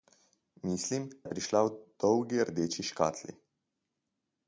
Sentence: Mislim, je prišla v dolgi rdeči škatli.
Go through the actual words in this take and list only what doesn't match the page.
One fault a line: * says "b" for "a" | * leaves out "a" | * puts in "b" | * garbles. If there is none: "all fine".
all fine